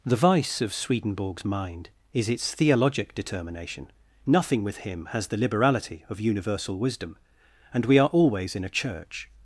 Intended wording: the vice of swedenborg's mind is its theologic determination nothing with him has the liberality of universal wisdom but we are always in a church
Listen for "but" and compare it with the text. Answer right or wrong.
wrong